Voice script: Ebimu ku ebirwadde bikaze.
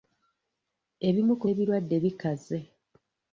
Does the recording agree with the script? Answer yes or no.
yes